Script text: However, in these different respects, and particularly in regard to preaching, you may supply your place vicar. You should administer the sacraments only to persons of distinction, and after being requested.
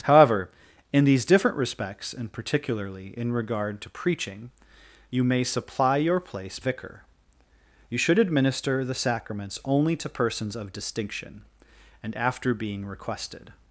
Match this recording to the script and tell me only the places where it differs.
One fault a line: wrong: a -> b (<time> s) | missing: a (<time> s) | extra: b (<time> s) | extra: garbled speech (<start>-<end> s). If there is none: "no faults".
no faults